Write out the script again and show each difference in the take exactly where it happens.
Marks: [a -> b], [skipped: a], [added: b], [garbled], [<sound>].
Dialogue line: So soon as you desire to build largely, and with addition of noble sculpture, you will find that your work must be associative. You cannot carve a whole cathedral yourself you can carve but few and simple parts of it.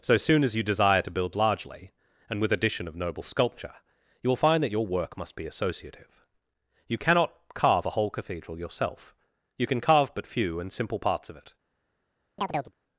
So soon as you desire to build largely, and with addition of noble sculpture, you will find that your work must be associative. You cannot carve a whole cathedral yourself you can carve but few and simple parts of it. [chirp]